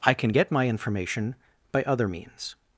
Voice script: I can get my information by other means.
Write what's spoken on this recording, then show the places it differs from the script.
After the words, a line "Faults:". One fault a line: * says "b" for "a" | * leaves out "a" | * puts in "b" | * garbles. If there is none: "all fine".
I can get my information by other means.
Faults:
all fine